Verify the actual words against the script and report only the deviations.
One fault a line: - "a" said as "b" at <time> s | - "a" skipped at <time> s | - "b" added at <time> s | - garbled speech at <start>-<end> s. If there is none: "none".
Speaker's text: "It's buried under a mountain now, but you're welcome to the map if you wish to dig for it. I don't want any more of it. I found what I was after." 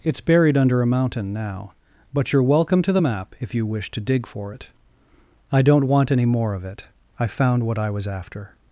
none